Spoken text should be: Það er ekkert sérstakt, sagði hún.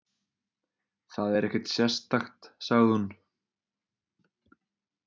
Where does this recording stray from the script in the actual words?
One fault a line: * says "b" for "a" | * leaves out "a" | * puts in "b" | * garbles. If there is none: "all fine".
all fine